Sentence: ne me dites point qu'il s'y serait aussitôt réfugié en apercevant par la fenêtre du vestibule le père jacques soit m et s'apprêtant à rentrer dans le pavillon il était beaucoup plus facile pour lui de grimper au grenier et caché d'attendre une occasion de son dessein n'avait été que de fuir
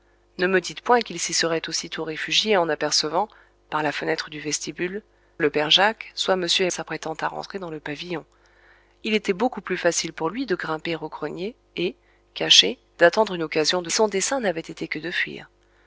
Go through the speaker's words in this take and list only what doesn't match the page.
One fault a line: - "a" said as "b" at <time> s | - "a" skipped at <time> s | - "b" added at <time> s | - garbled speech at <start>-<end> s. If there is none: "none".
none